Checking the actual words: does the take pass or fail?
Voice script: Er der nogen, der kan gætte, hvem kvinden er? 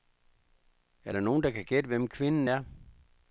pass